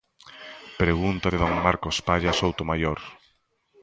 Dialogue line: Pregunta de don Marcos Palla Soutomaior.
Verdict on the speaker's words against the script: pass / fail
pass